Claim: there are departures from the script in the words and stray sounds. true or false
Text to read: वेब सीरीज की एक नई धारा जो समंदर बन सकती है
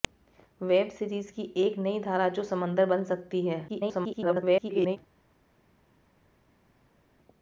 true